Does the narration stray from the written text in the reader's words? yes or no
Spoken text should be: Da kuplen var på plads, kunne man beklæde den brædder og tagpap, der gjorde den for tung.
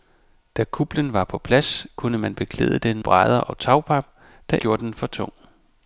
no